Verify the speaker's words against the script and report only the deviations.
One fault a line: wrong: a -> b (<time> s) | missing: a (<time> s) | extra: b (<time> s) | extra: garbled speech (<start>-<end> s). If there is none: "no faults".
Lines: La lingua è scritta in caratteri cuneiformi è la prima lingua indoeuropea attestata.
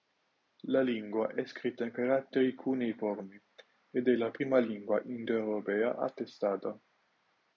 extra: ed (3.9 s)